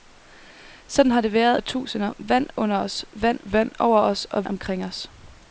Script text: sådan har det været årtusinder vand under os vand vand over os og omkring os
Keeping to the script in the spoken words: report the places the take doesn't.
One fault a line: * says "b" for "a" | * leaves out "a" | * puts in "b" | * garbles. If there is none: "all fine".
all fine